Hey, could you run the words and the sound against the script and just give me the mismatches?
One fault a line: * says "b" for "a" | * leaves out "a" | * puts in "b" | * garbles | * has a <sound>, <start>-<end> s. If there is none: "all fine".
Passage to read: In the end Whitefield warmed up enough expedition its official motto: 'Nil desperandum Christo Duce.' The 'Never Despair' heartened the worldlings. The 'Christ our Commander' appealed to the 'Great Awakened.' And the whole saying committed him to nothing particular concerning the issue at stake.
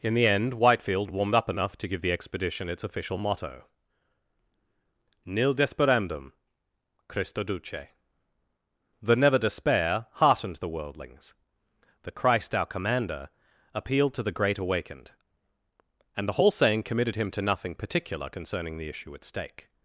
* puts in "to give the"